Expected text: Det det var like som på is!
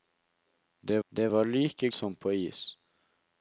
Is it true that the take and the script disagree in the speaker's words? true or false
false